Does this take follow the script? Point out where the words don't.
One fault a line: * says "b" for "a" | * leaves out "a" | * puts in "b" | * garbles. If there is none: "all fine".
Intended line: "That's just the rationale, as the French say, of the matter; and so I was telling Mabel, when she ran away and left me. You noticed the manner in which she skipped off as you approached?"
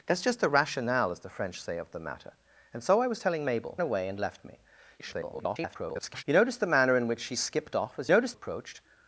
* leaves out "when she ran"
* garbles
* says "noticed" for "you"